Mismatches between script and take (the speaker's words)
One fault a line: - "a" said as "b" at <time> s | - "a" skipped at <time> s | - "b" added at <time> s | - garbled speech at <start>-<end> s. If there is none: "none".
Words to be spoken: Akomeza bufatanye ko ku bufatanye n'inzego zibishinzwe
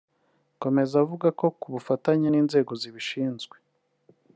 - "bufatanye" said as "avuga" at 1.0 s